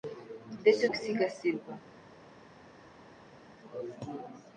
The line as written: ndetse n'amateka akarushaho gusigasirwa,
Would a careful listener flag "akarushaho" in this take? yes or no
yes